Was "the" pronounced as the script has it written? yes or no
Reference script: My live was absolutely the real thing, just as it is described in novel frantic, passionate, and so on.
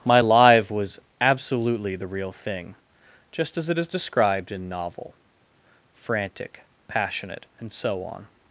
yes